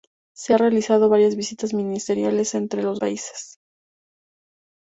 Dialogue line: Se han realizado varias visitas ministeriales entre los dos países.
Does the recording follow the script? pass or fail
fail